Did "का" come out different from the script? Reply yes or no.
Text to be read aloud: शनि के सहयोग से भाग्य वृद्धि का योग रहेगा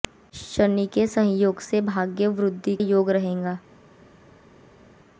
yes